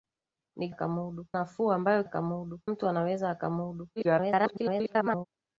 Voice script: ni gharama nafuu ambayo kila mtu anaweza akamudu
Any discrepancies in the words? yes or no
yes